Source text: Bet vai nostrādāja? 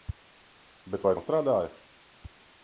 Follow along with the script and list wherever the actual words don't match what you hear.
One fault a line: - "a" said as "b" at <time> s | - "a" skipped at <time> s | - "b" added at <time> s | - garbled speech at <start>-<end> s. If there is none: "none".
none